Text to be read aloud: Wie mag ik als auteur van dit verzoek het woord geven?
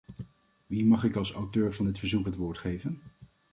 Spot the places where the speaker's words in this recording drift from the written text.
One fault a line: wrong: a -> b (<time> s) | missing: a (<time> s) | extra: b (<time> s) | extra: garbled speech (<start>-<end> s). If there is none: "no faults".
no faults